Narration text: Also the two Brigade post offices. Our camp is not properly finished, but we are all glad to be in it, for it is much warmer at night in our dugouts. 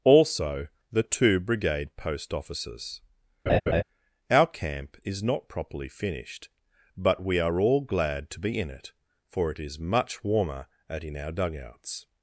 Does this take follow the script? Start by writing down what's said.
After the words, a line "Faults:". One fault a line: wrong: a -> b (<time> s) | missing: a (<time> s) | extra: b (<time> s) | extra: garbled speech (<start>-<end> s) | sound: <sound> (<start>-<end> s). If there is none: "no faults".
Also the two Brigade post offices. Our camp is not properly finished, but we are all glad to be in it, for it is much warmer at in our dugouts.
Faults:
sound: laugh (3.5-3.8 s)
missing: night (11.0 s)